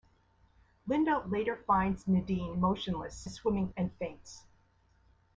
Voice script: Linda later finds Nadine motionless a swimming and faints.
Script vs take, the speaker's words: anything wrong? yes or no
no